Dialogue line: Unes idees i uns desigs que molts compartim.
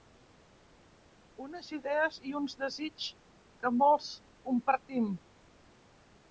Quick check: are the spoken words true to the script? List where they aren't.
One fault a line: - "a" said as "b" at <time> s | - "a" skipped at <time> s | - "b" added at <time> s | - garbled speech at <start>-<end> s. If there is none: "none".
none